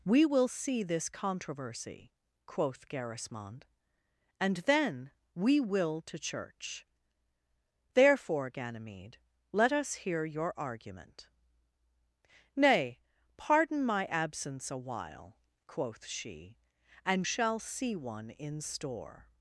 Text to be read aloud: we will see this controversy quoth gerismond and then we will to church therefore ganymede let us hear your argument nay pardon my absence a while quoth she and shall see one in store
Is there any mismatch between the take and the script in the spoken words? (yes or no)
no